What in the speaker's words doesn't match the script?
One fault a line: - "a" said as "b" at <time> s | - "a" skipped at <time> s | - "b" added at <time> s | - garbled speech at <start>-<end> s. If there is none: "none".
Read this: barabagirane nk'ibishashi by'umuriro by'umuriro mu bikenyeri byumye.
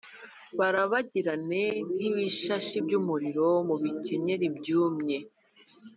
- "by'umuriro" skipped at 3.5 s